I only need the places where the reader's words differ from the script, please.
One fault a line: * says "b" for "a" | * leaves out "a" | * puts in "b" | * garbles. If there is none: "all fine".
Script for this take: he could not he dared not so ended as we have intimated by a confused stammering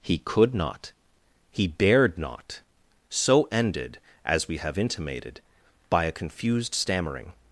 all fine